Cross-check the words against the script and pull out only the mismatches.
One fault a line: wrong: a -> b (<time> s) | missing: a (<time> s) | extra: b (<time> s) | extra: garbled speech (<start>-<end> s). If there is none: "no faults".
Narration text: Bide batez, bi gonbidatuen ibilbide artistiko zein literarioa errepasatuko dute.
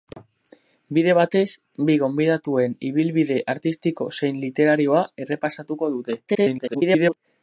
extra: garbled speech (6.3-7.2 s)